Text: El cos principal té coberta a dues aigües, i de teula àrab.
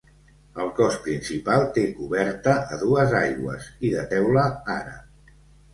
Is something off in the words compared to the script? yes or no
no